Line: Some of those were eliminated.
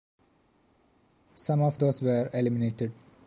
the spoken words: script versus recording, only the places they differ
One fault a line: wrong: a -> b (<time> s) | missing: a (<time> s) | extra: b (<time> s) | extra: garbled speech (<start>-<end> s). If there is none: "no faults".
no faults